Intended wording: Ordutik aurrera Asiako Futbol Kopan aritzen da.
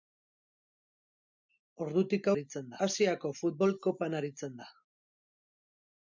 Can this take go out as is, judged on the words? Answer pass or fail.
fail